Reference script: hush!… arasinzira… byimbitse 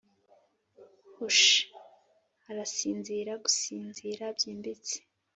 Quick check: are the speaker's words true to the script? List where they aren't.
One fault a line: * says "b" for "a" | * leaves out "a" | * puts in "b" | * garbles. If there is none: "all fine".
* puts in "gusinzira"